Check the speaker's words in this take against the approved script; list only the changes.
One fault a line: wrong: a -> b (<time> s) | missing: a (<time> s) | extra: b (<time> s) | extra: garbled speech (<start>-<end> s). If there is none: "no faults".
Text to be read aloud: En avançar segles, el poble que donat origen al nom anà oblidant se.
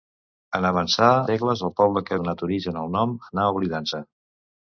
no faults